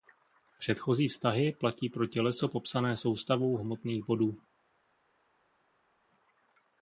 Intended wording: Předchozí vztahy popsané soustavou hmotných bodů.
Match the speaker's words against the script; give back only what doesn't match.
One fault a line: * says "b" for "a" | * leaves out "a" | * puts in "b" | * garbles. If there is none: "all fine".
* puts in "platí pro těleso"